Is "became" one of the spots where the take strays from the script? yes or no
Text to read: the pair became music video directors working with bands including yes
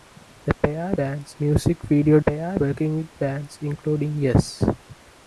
yes